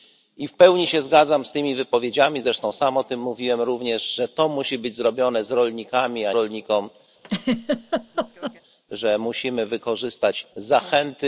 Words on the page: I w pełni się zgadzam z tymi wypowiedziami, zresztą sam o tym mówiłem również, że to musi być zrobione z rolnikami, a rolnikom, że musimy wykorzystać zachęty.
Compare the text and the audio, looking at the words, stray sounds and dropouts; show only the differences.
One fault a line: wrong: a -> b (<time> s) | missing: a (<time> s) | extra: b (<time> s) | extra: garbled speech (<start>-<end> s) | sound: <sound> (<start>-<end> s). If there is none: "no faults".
sound: laugh (7.2-8.6 s)